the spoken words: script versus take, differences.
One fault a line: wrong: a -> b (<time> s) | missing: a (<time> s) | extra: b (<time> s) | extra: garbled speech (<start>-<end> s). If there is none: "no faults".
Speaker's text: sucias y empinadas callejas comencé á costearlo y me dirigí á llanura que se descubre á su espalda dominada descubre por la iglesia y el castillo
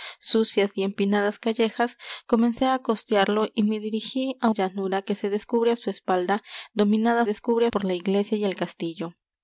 no faults